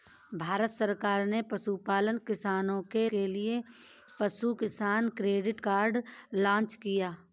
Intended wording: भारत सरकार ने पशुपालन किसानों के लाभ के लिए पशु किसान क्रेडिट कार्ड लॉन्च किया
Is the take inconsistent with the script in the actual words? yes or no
yes